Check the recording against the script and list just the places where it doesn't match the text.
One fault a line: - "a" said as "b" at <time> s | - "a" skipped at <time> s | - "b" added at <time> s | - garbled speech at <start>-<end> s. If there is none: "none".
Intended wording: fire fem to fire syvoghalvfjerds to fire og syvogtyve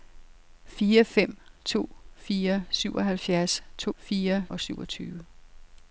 none